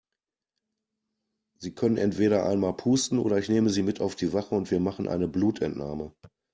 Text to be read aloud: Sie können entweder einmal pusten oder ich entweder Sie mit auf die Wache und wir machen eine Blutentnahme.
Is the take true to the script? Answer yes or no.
no